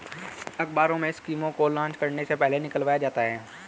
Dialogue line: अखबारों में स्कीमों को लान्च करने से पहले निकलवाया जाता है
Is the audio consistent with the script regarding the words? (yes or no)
yes